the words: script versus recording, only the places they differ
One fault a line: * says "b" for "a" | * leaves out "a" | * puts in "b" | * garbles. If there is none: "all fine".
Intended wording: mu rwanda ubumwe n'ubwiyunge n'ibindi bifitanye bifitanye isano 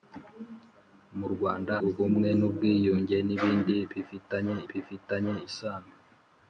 all fine